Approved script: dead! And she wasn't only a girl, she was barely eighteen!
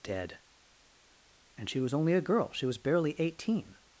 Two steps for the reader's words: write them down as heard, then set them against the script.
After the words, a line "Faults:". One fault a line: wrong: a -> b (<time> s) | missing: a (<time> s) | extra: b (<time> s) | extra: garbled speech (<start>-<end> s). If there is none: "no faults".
dead! And she was only a girl, she was barely eighteen!
Faults:
wrong: wasn't -> was (1.8 s)